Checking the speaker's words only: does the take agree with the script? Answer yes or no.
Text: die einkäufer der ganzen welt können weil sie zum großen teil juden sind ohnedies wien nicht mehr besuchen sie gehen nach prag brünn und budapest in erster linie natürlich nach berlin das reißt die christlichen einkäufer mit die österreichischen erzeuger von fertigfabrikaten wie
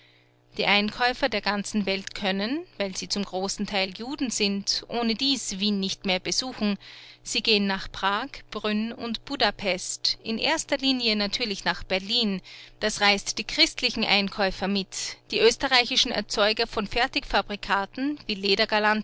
yes